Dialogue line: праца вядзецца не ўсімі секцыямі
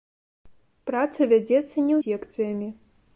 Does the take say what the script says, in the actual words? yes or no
no